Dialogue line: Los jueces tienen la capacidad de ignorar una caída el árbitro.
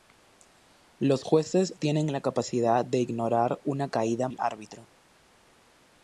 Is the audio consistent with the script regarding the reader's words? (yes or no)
yes